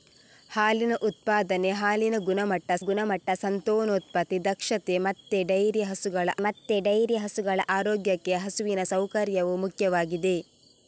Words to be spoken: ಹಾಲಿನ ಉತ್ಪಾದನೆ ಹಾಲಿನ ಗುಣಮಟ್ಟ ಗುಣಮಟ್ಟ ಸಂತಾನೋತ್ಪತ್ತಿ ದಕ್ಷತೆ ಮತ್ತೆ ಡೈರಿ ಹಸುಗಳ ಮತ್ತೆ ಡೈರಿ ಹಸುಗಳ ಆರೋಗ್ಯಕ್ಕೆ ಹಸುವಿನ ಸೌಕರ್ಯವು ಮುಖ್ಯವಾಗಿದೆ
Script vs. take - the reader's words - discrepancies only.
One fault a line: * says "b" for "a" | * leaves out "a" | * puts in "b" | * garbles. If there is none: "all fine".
all fine